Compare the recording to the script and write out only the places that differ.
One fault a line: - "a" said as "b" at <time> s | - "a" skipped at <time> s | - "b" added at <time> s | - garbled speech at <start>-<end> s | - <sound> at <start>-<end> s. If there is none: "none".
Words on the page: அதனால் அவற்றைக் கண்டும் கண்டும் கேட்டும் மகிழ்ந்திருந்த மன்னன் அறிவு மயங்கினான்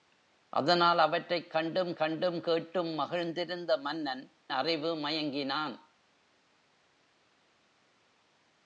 none